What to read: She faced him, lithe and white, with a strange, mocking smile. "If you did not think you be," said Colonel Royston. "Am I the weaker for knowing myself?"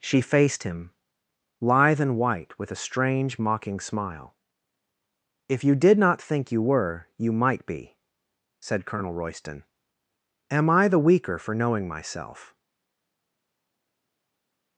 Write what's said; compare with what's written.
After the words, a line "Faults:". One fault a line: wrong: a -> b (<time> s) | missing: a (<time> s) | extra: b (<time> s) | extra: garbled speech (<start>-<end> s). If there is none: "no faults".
She faced him, lithe and white, with a strange, mocking smile. "If you did not think you were you might be," said Colonel Royston. "Am I the weaker for knowing myself?"
Faults:
extra: were you might (6.6 s)